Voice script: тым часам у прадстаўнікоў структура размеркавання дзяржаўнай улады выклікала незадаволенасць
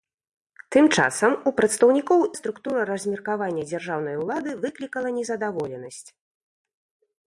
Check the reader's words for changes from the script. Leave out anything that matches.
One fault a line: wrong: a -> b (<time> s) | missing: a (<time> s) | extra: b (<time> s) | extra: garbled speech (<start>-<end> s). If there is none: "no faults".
no faults